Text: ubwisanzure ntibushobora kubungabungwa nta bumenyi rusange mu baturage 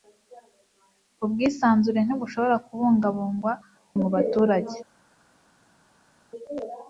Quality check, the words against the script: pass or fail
fail